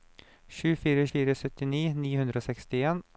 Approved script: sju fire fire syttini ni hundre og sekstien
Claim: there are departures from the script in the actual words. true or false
false